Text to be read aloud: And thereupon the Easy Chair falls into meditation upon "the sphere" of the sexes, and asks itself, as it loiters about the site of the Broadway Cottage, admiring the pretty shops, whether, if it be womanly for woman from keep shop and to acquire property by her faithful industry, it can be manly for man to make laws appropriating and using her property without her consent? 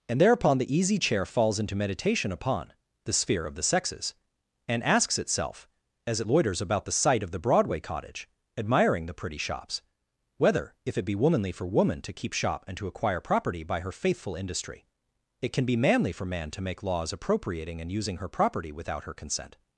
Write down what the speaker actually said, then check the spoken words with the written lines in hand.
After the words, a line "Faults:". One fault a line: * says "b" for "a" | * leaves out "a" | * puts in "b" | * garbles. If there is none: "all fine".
And thereupon the Easy Chair falls into meditation upon "the sphere" of the sexes, and asks itself, as it loiters about the site of the Broadway Cottage, admiring the pretty shops, whether, if it be womanly for woman to keep shop and to acquire property by her faithful industry, it can be manly for man to make laws appropriating and using her property without her consent?
Faults:
* says "to" for "from"